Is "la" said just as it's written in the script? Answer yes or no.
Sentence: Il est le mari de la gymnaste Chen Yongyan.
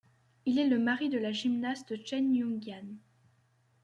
yes